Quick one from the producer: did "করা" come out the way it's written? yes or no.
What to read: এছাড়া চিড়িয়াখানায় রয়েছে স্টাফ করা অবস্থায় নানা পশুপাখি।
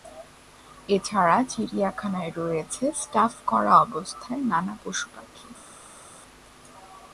yes